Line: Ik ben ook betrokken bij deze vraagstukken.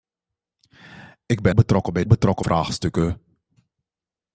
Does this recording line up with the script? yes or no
no